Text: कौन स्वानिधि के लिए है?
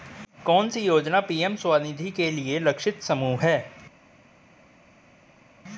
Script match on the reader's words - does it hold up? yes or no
no